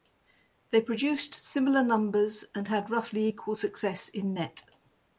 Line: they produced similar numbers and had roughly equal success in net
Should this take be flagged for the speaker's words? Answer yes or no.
no